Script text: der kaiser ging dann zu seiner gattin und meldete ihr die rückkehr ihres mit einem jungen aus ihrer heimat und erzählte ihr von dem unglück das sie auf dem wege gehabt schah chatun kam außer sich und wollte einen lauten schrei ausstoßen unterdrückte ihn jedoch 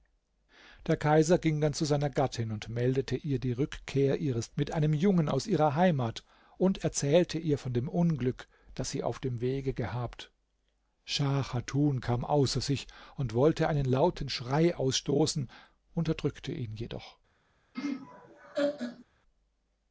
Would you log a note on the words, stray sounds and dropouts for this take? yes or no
yes